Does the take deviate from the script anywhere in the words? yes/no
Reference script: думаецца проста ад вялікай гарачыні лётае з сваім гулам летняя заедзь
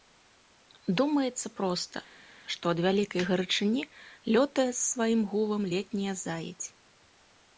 yes